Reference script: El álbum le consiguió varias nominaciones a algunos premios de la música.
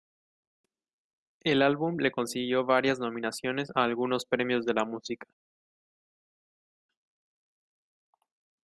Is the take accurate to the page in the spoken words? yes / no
yes